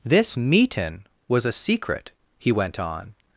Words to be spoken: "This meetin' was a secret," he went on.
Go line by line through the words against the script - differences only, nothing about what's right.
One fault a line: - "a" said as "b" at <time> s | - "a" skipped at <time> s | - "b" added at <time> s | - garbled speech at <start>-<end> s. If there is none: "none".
none